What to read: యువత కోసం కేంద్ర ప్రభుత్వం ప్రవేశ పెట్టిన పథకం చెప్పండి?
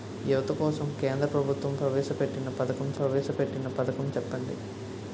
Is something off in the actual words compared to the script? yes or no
yes